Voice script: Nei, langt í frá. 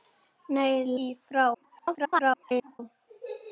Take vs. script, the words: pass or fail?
fail